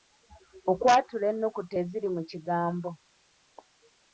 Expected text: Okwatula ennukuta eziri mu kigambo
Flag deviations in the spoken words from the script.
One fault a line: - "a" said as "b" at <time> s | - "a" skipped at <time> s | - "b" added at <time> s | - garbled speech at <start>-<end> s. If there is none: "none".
none